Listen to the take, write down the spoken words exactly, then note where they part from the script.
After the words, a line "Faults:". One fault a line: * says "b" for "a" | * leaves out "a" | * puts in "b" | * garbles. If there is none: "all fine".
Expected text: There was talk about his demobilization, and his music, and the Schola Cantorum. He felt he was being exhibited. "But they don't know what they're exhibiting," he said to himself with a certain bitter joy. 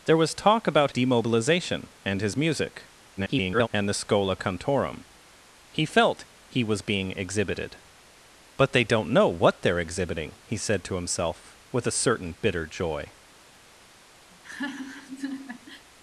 There was talk about demobilization, and his music, [garbled] and the Schola Cantorum. He felt he was being exhibited. "But they don't know what they're exhibiting," he said to himself with a certain bitter joy.
Faults:
* leaves out "his"
* garbles